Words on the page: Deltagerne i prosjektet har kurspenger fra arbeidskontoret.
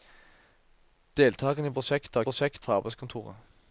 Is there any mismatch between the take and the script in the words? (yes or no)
yes